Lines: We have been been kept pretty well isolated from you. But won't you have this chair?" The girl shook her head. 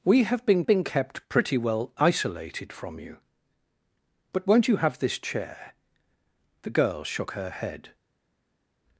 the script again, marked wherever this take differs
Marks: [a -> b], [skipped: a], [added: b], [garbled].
We have been been kept pretty well isolated from you. But won't you have this chair?" The girl shook her head.